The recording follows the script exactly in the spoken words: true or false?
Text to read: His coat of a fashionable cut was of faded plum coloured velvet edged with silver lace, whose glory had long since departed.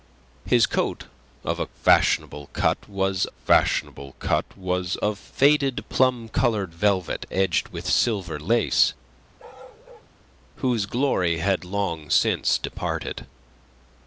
false